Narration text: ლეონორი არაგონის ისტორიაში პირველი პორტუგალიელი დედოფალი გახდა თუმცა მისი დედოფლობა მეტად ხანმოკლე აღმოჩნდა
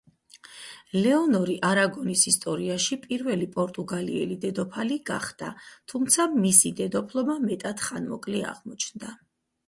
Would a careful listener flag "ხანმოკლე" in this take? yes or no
no